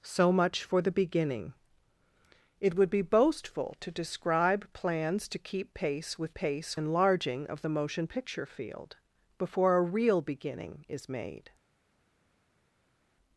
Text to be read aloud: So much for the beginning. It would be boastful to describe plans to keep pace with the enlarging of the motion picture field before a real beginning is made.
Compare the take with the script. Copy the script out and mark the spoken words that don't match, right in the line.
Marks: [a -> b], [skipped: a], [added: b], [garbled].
So much for the beginning. It would be boastful to describe plans to keep pace with [the -> pace] enlarging of the motion picture field before a real beginning is made.